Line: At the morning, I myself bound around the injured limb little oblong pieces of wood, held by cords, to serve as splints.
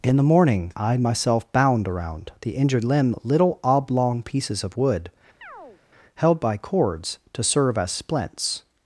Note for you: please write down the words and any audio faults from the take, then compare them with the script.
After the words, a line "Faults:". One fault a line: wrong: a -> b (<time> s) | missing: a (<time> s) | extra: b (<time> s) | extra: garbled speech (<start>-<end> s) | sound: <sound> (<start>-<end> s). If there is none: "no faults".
In the morning, I myself bound around the injured limb little oblong pieces of wood, held by cords, to serve as splints.
Faults:
wrong: At -> In (0.0 s)
sound: chirp (5.4-5.8 s)